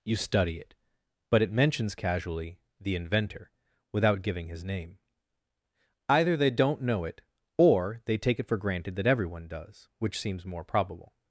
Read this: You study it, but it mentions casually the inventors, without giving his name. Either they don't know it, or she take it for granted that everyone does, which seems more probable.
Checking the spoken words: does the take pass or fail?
fail